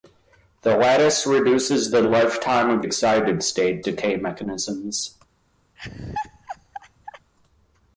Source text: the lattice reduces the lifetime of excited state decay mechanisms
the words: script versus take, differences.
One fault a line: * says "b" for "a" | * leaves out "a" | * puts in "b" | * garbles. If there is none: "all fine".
all fine